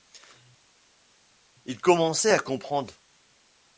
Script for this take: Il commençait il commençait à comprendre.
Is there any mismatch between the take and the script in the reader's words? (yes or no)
yes